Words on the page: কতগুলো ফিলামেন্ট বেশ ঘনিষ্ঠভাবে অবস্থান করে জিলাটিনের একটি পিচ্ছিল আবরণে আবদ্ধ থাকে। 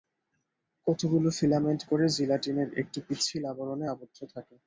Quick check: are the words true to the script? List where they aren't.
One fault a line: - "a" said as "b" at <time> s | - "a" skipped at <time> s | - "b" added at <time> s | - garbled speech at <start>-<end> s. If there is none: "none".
- "বেশ ঘনিষ্ঠভাবে অবস্থান" skipped at 1.8 s